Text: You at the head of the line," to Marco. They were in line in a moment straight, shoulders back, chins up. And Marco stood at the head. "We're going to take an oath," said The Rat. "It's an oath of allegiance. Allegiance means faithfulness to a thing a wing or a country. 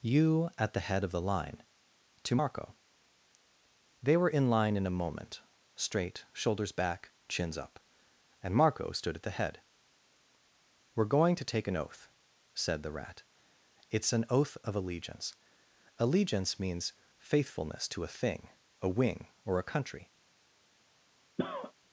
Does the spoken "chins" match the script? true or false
true